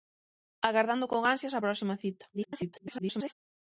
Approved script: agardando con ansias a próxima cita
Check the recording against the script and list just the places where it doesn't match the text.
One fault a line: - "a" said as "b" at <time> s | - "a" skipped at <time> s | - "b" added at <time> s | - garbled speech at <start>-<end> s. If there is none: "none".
- garbled speech at 2.3-3.3 s